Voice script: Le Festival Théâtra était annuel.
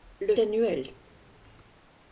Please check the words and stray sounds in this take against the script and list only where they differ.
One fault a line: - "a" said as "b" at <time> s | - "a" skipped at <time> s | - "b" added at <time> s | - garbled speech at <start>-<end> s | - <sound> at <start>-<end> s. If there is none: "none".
- "Festival Théâtra était" skipped at 0.3 s